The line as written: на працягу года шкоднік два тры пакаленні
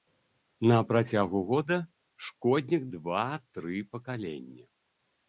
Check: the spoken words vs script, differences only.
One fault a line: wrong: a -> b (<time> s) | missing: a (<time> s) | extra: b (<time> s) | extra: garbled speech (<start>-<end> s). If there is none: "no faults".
no faults